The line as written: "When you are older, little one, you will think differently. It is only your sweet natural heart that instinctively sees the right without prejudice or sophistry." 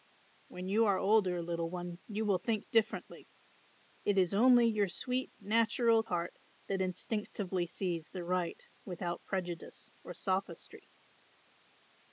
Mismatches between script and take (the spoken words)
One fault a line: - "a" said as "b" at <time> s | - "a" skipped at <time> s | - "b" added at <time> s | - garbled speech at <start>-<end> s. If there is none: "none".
none